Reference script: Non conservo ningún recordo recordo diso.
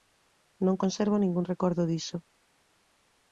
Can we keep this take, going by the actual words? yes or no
no